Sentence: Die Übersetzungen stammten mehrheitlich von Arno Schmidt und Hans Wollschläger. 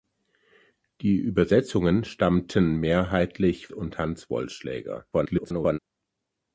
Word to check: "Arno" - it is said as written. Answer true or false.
false